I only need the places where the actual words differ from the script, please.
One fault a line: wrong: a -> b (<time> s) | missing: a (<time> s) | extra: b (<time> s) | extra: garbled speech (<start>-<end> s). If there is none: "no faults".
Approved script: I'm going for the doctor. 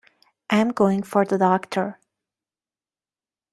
no faults